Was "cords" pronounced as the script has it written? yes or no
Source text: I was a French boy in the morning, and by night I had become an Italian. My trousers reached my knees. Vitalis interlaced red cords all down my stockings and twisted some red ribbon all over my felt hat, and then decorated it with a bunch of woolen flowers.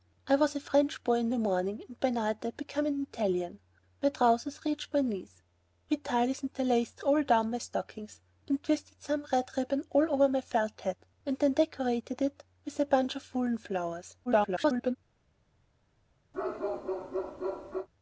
no